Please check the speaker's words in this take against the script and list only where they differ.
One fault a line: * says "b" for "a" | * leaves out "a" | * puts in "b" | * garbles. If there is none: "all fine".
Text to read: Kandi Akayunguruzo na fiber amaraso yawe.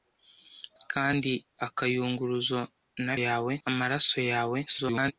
* says "yawe" for "fiber"
* garbles